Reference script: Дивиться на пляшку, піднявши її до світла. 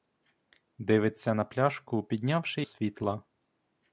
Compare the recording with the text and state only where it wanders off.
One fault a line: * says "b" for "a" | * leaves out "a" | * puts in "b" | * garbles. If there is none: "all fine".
* leaves out "її до"